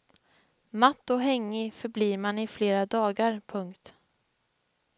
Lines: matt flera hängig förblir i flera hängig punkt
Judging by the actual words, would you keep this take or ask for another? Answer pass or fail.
fail